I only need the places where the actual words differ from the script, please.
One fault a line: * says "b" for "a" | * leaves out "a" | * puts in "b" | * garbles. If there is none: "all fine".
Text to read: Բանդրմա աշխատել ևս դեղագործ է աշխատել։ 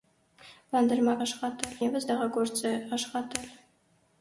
all fine